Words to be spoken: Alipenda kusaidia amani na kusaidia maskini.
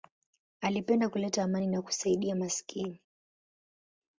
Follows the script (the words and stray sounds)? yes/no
no